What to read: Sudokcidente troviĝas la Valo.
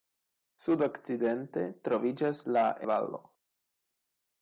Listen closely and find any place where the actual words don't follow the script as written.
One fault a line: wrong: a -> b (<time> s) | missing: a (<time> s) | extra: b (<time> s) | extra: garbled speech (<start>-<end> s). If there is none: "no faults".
no faults